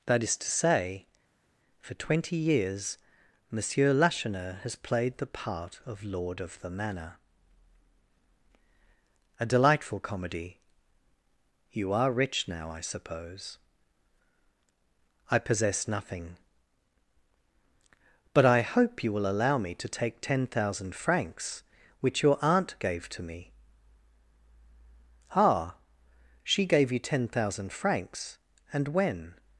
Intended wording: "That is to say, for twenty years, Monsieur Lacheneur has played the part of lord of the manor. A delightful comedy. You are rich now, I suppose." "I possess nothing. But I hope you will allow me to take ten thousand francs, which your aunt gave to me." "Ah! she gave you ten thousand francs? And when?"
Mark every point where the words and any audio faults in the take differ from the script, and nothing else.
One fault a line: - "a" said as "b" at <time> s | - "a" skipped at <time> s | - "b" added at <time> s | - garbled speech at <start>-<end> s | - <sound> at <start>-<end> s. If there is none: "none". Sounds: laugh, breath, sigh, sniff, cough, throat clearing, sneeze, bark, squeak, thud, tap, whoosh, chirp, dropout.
none